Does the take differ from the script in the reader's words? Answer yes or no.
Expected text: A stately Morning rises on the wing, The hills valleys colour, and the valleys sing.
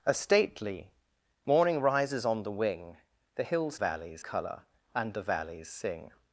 no